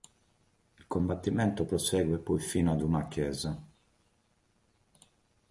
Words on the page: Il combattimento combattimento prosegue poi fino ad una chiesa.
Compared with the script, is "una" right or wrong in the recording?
right